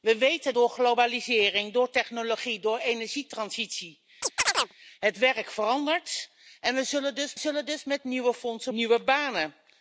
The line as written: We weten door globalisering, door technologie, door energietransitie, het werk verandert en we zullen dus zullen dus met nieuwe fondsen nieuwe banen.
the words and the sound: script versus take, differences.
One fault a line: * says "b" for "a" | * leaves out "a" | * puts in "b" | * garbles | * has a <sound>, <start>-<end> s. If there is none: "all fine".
* has a chirp, 4.2-4.7 s